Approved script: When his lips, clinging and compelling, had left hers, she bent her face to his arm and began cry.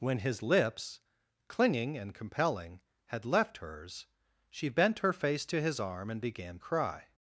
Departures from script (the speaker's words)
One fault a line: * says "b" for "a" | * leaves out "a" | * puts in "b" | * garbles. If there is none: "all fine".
all fine